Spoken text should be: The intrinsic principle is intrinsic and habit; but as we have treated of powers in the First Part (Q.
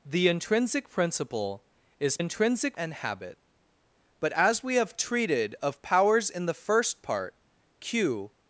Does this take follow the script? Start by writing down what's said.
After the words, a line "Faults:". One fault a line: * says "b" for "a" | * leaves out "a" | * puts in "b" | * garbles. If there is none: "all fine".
The intrinsic principle is intrinsic and habit; but as we have treated of powers in the First Part (Q.
Faults:
all fine